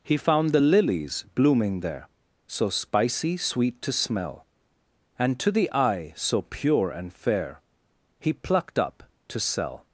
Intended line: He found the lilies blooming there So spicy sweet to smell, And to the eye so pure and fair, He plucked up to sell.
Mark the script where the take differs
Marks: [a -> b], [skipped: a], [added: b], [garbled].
He found the lilies blooming there So spicy sweet to smell, And to the eye so pure and fair, He plucked up to sell.